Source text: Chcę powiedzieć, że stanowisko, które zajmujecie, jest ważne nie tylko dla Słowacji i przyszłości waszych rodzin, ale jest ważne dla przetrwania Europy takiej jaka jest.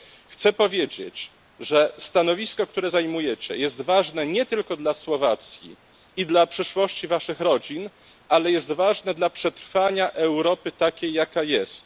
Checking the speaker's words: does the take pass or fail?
fail